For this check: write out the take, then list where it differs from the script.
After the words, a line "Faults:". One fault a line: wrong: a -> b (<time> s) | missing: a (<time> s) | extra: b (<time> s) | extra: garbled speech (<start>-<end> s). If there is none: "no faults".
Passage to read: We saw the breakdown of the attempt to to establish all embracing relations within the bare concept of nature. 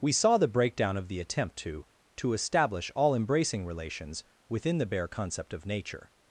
We saw the breakdown of the attempt to to establish all embracing relations within the bare concept of nature.
Faults:
no faults